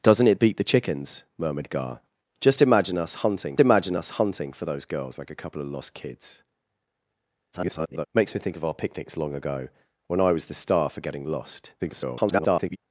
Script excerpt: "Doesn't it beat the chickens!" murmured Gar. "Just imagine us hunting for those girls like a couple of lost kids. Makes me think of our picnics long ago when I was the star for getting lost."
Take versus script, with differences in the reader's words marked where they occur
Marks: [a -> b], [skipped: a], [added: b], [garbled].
"Doesn't it beat the chickens!" murmured Gar. "Just imagine us hunting [added: imagine us hunting] for those girls like a couple of lost kids. [garbled] Makes me think of our picnics long ago when I was the star for getting lost." [garbled]